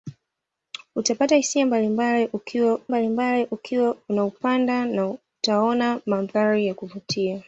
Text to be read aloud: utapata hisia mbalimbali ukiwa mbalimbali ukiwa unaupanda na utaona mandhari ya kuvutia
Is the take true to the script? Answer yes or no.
yes